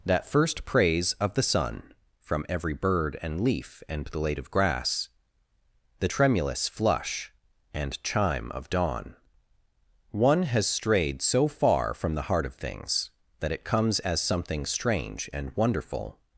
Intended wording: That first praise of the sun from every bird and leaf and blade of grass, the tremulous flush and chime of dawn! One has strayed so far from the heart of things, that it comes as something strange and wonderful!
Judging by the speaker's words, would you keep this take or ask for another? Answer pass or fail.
pass